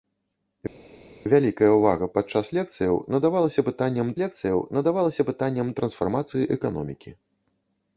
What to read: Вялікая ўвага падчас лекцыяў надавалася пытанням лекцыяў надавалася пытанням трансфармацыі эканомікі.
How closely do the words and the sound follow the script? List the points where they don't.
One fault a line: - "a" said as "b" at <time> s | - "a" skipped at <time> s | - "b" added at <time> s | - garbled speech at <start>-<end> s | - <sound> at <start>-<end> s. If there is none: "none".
none